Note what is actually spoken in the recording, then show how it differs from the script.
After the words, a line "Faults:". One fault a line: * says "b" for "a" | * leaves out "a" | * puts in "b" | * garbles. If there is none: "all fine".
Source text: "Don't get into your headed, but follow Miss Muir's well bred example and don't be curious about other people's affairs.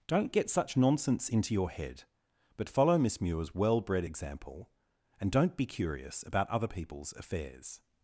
"Don't get such nonsense into your head, but follow Miss Muir's well bred example and don't be curious about other people's affairs.
Faults:
* puts in "such nonsense"
* says "head" for "headed"